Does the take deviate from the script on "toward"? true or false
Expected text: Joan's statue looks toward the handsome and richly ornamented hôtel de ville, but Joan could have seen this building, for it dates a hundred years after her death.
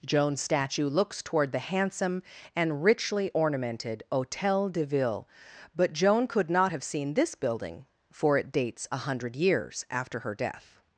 false